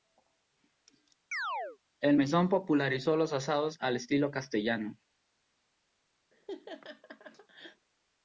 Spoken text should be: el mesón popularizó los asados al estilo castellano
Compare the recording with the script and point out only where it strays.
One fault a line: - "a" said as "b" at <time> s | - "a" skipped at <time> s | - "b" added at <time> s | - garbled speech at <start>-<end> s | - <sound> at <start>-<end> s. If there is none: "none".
- chirp at 1.3-1.8 s
- laugh at 6.3-7.9 s